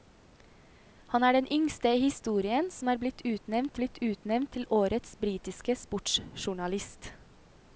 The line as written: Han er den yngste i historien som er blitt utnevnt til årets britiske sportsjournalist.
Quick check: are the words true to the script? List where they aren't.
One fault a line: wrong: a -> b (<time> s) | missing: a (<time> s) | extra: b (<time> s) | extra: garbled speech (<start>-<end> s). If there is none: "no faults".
extra: blitt utnevnt (3.8 s)